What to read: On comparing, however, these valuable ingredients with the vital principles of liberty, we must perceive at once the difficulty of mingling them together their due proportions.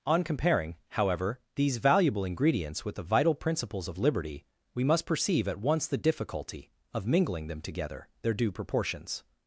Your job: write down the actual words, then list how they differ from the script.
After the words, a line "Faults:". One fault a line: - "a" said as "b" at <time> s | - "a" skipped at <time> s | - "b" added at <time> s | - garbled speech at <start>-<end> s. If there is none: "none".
On comparing, however, these valuable ingredients with the vital principles of liberty, we must perceive at once the difficulty of mingling them together their due proportions.
Faults:
none